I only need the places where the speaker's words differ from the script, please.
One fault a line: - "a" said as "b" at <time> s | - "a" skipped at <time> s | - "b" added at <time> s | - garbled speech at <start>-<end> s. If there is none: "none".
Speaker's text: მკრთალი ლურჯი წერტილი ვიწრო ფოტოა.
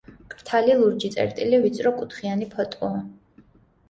- "კუთხიანი" added at 2.0 s